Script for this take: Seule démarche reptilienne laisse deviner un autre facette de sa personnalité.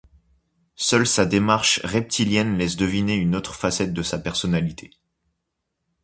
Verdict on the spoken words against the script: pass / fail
fail